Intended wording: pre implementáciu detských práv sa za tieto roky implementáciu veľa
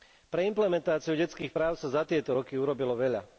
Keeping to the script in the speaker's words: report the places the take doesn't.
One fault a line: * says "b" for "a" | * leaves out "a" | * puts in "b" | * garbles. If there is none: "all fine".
* says "urobilo" for "implementáciu"